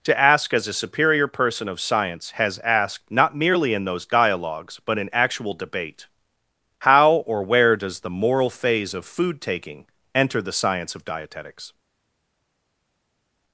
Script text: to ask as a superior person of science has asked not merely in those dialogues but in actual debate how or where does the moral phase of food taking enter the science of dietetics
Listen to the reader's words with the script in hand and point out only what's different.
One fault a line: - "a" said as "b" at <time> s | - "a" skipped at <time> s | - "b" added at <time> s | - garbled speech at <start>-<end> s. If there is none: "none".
none